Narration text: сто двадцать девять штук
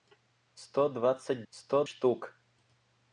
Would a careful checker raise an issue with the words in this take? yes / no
yes